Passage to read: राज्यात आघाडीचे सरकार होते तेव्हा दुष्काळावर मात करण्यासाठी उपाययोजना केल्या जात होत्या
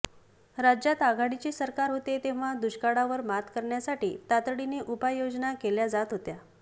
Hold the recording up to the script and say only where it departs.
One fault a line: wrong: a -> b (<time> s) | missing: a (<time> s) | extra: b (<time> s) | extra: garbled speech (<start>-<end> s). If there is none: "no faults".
extra: तातडीने (4.3 s)